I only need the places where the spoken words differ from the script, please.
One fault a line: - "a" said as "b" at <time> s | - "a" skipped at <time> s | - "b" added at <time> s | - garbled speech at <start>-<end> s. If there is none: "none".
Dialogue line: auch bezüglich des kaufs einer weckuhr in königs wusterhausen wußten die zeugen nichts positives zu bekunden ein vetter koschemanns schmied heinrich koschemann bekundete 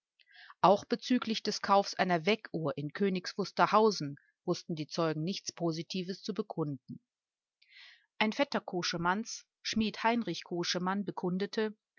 none